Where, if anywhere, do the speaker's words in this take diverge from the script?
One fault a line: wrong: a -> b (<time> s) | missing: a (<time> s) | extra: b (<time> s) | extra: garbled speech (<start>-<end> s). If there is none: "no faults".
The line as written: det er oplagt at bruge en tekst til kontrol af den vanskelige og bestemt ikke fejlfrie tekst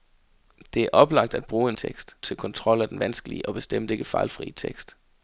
no faults